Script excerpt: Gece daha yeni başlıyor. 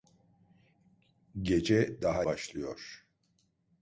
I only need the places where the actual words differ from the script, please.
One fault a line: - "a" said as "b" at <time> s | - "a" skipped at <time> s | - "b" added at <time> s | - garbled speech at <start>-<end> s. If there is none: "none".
- "yeni" skipped at 2.2 s